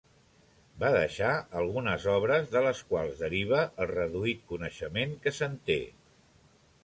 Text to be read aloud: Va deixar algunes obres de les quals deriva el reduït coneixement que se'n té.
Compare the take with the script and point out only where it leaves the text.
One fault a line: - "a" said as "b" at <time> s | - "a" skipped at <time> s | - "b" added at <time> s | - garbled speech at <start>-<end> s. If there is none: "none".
none